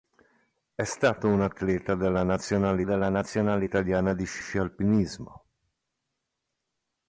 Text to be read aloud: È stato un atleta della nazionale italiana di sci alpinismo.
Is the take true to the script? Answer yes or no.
no